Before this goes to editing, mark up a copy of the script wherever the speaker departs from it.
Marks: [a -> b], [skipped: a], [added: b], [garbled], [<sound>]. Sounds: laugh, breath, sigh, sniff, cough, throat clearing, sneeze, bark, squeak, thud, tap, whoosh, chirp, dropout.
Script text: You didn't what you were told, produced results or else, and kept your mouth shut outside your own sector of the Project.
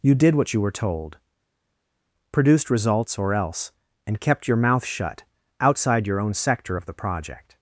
You [didn't -> did] what you were told, produced results or else, and kept your mouth shut outside your own sector of the Project.